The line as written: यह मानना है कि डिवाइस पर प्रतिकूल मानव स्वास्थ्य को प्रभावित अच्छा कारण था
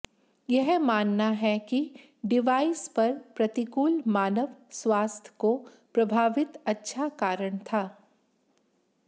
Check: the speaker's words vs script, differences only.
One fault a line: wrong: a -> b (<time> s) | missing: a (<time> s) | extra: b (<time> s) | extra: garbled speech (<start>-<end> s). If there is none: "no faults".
no faults